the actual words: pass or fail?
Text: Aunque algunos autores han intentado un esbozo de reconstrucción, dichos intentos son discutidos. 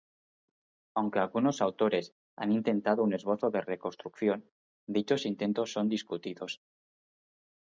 pass